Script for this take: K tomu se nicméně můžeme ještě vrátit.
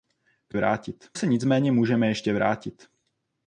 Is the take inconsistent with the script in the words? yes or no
yes